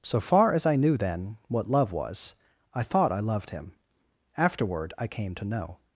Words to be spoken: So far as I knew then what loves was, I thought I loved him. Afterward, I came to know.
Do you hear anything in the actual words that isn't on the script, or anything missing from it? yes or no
yes